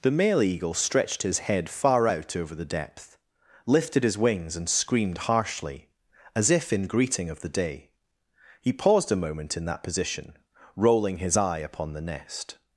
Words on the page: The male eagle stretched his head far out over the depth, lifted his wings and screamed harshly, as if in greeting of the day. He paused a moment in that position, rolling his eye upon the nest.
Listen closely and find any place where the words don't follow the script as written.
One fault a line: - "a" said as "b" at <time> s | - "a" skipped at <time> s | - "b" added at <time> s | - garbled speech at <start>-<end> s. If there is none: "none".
none